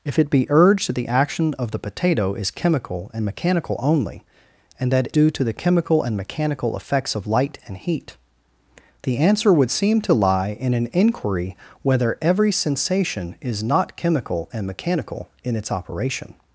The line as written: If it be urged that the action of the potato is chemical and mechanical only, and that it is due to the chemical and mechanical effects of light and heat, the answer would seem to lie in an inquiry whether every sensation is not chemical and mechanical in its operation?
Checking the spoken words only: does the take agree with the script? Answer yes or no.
no